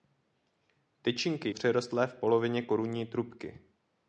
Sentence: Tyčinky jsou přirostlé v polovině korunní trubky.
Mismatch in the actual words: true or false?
true